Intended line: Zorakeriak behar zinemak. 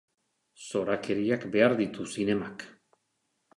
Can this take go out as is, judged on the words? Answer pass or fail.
fail